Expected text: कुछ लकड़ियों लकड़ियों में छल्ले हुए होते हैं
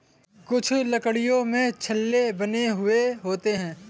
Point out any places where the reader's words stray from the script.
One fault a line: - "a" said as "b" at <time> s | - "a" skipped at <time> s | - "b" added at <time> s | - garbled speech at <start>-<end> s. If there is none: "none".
- "लकड़ियों" skipped at 1.4 s
- "बने" added at 2.3 s